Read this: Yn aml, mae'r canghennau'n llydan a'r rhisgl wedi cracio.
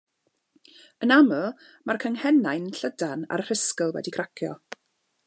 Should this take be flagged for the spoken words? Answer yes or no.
no